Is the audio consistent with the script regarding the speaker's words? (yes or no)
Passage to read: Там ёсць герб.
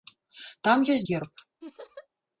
yes